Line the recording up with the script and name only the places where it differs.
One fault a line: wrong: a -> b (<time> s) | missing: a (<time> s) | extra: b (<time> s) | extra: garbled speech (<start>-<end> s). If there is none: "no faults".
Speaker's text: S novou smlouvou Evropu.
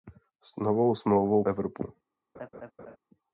no faults